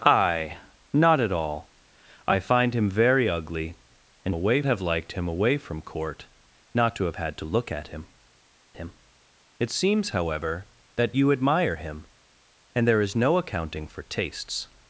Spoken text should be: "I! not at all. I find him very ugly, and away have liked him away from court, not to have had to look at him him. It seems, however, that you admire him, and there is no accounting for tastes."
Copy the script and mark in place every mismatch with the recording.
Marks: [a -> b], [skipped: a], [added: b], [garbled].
"I! not at all. I find him very ugly, and away have liked him away from court, not to have had to look at him him. It seems, however, that you admire him, and there is no accounting for tastes."